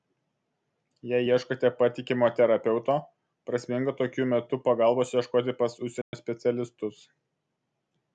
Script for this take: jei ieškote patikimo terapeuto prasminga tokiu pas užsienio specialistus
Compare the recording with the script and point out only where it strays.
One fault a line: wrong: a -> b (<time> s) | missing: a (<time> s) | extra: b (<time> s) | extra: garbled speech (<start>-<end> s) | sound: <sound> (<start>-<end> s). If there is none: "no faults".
extra: metu pagalbos ieškoti (4.3 s)
sound: dropout (6.0-6.1 s)